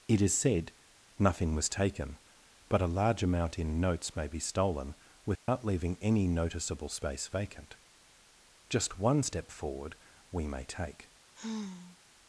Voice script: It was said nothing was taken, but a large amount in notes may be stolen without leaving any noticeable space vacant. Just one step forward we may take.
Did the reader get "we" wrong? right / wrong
right